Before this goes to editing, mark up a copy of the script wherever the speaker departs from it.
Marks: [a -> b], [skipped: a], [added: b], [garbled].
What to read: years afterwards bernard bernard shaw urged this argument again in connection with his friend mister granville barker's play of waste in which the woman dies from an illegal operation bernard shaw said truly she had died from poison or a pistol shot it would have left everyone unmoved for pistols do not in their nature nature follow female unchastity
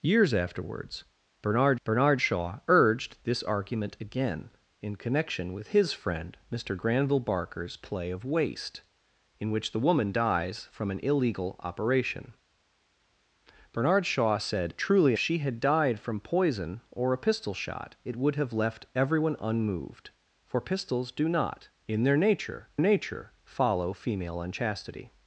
years afterwards bernard bernard shaw urged this argument again in connection with his friend mister granville barker's play of waste in which the woman dies from an illegal operation bernard shaw said truly she had died from poison or a pistol shot it would have left everyone unmoved for pistols do not in their nature nature follow female unchastity